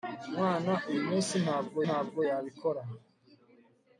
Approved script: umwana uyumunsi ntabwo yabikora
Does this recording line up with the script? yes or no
no